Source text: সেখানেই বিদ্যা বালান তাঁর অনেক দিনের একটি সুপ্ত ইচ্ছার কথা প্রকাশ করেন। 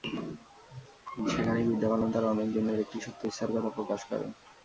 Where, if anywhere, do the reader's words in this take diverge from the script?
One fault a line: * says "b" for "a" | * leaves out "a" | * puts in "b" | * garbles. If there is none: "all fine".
all fine